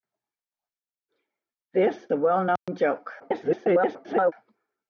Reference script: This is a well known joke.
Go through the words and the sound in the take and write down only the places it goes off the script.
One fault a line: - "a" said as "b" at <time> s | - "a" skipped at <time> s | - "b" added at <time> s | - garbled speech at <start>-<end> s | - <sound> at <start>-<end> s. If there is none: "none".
- "is" skipped at 2.1 s
- dropout at 2.6-2.7 s
- garbled speech at 3.2-4.3 s